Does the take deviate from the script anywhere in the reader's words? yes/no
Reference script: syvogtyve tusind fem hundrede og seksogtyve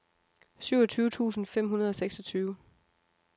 no